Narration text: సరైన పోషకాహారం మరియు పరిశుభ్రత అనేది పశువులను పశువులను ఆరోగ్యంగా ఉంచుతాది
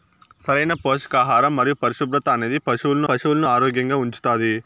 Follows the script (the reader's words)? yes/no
yes